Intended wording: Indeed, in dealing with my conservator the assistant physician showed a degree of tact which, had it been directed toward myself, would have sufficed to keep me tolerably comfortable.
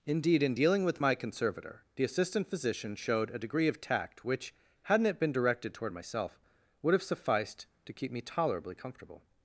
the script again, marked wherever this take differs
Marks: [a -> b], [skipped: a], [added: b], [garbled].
Indeed, in dealing with my conservator the assistant physician showed a degree of tact which, [had -> hadn't] it been directed toward myself, would have sufficed to keep me tolerably comfortable.